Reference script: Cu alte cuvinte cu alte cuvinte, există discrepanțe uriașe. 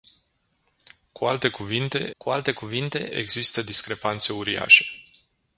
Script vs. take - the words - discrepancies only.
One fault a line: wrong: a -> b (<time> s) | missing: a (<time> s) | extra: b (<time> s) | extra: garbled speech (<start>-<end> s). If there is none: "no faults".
no faults